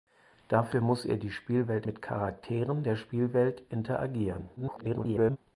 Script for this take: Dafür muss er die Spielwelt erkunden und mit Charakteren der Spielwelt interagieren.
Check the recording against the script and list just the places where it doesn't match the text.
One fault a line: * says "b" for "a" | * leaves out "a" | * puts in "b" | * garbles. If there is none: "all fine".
* leaves out "erkunden und"
* garbles